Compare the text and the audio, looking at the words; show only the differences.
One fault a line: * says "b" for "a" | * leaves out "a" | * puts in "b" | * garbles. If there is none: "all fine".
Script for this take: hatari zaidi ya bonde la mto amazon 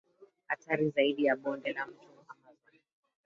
all fine